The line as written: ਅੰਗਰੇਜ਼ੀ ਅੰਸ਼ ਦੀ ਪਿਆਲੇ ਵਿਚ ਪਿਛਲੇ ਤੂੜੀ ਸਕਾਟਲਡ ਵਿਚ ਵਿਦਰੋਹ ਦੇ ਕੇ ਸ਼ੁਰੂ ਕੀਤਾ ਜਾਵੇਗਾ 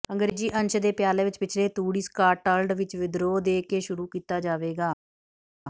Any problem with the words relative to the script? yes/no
yes